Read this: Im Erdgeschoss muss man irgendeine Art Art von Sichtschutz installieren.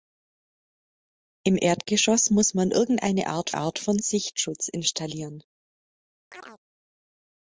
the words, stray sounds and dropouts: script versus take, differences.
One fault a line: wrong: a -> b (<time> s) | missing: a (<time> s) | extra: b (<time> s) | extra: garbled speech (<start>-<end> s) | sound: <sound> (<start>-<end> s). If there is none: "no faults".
sound: chirp (6.3-6.6 s)